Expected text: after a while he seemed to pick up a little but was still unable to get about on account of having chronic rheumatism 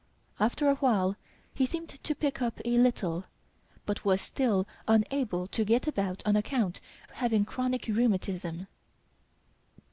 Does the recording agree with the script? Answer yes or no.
no